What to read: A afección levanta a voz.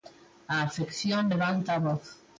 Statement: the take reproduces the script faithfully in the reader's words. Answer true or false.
true